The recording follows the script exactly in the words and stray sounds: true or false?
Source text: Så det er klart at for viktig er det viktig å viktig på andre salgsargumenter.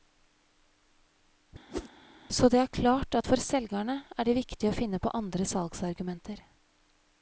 false